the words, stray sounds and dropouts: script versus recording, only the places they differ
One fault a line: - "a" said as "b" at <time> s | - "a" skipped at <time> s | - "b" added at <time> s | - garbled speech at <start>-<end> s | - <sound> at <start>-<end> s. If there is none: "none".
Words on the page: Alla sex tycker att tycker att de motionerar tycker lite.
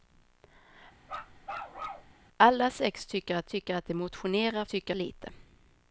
- bark at 1.0-2.1 s